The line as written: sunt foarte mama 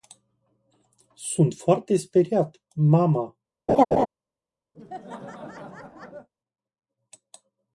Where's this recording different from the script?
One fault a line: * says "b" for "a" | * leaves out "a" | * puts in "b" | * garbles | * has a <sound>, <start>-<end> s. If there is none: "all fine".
* puts in "speriat"
* has a laugh, 3.7-4.1 s
* has a laugh, 4.7-6.3 s